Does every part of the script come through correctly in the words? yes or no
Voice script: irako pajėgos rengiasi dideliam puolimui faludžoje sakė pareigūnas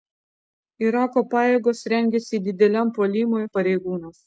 no